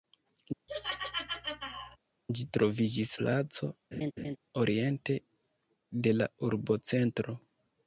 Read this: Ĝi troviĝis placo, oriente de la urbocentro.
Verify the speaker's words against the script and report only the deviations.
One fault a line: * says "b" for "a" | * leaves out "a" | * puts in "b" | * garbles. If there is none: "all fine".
all fine